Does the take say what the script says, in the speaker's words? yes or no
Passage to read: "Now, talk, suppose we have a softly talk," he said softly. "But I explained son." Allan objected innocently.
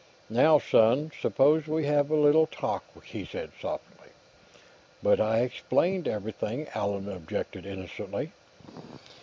no